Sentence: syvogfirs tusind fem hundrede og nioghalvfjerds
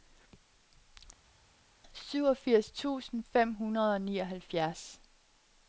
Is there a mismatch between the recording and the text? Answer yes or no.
no